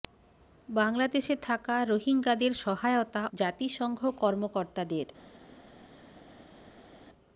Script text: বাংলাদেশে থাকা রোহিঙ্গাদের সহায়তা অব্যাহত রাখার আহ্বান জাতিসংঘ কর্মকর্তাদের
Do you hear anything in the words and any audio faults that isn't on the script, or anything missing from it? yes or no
yes